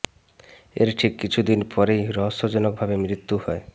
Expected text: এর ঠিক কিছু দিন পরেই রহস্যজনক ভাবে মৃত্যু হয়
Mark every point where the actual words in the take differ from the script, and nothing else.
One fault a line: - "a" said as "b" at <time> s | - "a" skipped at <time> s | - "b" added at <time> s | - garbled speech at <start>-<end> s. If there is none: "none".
none